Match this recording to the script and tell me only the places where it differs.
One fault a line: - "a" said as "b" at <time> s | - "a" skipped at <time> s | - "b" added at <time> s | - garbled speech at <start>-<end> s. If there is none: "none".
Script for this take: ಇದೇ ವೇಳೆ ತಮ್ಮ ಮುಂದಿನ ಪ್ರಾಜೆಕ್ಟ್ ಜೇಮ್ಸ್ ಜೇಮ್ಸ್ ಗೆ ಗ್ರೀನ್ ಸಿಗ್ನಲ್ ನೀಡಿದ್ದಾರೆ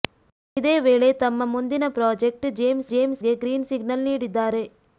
none